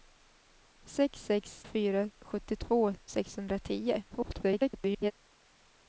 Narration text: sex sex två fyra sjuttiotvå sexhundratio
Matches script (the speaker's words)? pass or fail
fail